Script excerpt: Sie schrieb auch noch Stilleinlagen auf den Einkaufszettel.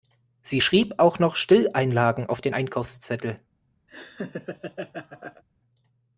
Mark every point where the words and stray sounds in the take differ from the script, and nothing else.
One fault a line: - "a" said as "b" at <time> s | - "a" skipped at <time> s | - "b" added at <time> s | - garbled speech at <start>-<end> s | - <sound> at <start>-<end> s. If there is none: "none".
- laugh at 3.9-5.4 s